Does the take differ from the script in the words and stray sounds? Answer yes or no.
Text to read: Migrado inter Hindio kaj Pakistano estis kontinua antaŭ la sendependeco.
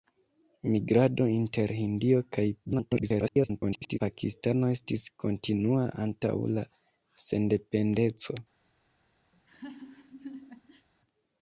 yes